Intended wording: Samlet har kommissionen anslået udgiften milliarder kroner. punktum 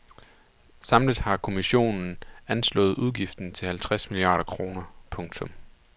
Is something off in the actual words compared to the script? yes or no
yes